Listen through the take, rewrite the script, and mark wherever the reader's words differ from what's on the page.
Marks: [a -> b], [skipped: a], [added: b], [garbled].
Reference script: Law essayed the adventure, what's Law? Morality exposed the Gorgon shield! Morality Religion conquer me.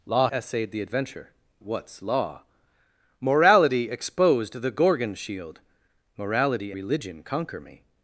Law essayed the adventure, what's Law? Morality exposed the Gorgon shield! Morality Religion conquer me.